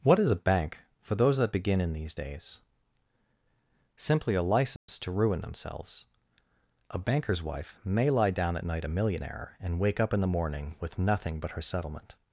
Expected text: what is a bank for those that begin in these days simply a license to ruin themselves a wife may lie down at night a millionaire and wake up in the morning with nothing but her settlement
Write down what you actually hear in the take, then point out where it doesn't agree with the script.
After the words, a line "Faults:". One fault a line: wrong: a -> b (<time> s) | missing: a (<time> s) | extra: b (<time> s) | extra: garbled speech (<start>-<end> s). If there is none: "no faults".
what is a bank for those that begin in these days simply a license to ruin themselves a banker's wife may lie down at night a millionaire and wake up in the morning with nothing but her settlement
Faults:
extra: banker's (7.0 s)